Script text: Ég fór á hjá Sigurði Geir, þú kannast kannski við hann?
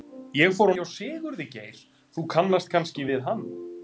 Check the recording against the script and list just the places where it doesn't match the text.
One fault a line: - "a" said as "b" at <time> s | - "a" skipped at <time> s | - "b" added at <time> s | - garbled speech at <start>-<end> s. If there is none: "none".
none